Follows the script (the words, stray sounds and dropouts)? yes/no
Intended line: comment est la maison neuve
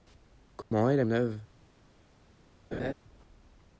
no